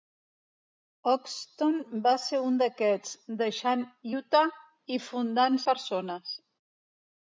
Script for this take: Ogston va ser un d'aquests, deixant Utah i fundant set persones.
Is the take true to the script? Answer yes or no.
no